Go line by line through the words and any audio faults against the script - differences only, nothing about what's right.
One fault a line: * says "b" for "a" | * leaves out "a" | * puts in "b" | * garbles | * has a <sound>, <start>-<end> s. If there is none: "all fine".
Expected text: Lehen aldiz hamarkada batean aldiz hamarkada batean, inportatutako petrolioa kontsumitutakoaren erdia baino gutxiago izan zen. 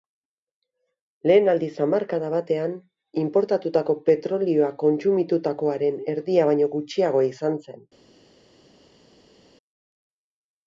* leaves out "aldiz hamarkada batean"